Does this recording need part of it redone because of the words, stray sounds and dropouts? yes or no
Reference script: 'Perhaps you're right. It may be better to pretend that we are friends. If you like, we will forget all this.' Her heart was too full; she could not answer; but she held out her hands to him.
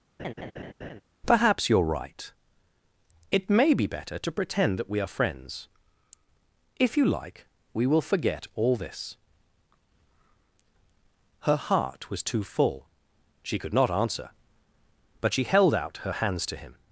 yes